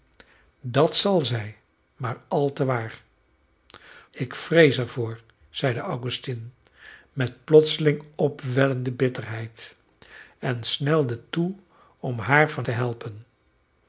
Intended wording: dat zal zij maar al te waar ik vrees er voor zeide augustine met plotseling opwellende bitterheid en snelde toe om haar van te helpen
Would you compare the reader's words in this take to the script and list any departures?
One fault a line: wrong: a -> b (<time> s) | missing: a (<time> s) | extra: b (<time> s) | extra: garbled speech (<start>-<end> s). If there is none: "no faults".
no faults